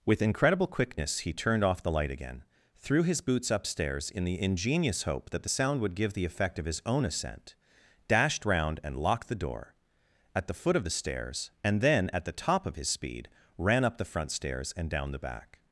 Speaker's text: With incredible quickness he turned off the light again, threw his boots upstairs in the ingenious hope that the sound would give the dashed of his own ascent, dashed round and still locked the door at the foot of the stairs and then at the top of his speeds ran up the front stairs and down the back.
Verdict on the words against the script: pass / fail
fail